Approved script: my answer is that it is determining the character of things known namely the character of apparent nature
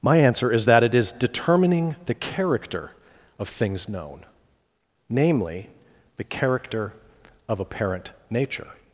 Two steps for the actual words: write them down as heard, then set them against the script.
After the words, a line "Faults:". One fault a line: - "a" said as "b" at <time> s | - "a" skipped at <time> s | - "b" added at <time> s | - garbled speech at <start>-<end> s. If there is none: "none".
my answer is that it is determining the character of things known namely the character of apparent nature
Faults:
none